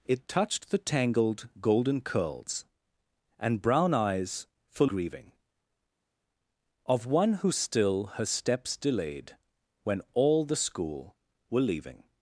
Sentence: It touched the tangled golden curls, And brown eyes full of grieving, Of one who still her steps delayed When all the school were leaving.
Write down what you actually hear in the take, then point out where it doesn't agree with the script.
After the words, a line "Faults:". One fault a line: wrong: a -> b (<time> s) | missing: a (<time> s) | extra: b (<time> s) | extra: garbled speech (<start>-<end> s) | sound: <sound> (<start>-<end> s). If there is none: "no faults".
It touched the tangled golden curls, And brown eyes full grieving, Of one who still her steps delayed When all the school were leaving.
Faults:
missing: of (4.9 s)